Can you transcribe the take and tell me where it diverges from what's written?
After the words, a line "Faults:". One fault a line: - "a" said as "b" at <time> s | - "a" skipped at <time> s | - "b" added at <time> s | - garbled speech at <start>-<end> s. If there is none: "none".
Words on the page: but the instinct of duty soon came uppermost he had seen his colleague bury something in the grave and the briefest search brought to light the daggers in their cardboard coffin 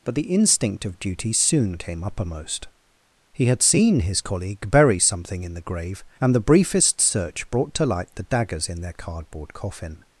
but the instinct of duty soon came uppermost he had seen his colleague bury something in the grave and the briefest search brought to light the daggers in their cardboard coffin
Faults:
none